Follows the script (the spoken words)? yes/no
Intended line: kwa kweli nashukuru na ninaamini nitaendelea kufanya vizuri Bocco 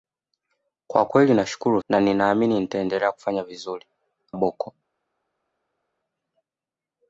yes